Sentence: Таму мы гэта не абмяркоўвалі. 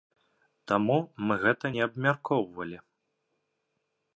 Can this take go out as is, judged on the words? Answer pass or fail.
pass